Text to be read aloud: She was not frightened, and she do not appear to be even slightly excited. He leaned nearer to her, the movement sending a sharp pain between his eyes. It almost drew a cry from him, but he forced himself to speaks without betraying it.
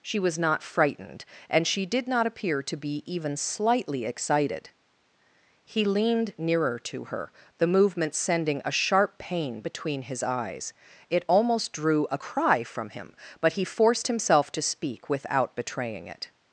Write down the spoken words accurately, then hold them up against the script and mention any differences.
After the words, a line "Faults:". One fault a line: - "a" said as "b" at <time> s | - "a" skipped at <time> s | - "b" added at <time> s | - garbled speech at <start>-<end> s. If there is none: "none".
She was not frightened, and she did not appear to be even slightly excited. He leaned nearer to her, the movement sending a sharp pain between his eyes. It almost drew a cry from him, but he forced himself to speak without betraying it.
Faults:
- "do" said as "did" at 1.9 s
- "speaks" said as "speak" at 14.6 s